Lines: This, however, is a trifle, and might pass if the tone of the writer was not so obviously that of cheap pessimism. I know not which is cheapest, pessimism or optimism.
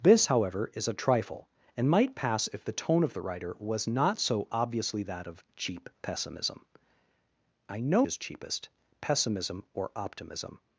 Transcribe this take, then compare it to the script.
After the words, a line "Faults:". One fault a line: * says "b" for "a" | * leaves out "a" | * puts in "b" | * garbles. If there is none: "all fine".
This, however, is a trifle, and might pass if the tone of the writer was not so obviously that of cheap pessimism. I know is cheapest, pessimism or optimism.
Faults:
* leaves out "not which"